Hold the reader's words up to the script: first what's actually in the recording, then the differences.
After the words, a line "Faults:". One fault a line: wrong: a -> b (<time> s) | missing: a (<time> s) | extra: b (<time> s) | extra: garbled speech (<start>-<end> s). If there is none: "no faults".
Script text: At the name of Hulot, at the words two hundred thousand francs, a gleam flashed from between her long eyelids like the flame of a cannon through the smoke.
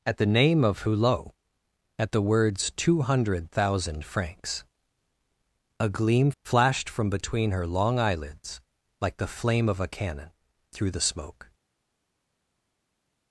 At the name of Hulot, at the words two hundred thousand francs, a gleam flashed from between her long eyelids like the flame of a cannon through the smoke.
Faults:
no faults